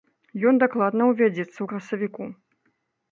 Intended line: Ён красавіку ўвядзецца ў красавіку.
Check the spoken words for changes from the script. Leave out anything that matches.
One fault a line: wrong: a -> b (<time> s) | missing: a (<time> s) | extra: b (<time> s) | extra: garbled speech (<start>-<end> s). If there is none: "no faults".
wrong: красавіку -> дакладна (0.6 s)